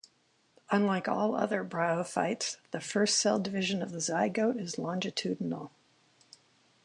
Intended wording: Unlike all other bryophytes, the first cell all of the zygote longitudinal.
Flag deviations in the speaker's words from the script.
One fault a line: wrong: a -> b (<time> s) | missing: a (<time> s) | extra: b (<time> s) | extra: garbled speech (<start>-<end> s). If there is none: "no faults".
wrong: all -> division (3.4 s)
extra: is (4.6 s)